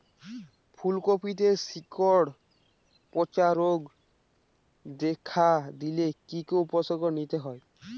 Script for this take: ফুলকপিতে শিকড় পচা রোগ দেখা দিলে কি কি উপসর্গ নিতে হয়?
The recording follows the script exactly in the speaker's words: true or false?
true